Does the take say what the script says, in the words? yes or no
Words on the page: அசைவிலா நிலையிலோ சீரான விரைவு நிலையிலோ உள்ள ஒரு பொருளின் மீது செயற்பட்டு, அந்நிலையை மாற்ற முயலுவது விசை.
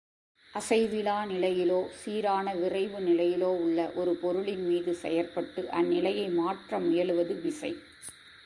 yes